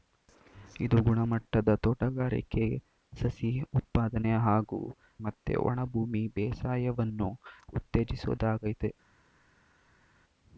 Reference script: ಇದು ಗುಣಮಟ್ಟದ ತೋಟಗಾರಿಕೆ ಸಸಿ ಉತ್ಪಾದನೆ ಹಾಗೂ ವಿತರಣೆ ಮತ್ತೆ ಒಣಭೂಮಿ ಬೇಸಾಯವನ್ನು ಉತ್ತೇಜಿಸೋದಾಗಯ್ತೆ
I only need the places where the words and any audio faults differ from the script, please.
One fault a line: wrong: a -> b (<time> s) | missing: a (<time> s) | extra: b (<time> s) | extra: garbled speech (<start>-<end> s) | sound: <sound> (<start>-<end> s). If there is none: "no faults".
missing: ವಿತರಣೆ (4.8 s)